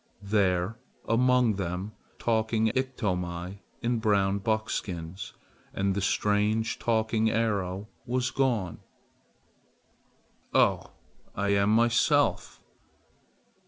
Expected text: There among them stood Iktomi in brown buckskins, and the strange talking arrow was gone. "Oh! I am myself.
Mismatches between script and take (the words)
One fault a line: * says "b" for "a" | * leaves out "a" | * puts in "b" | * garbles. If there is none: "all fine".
* says "talking" for "stood"